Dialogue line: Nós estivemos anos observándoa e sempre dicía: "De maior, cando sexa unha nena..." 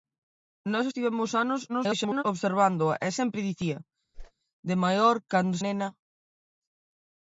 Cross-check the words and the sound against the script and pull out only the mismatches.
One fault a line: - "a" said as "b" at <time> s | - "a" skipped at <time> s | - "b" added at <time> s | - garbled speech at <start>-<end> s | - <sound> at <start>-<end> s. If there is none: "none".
- garbled speech at 1.7-2.2 s
- whoosh at 4.1-4.3 s
- "sexa unha" skipped at 5.6 s